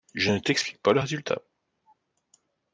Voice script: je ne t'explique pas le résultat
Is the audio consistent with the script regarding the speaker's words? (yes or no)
yes